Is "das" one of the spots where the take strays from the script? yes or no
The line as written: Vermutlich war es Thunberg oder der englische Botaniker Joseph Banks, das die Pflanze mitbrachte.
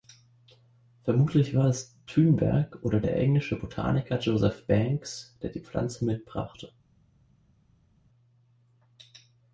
yes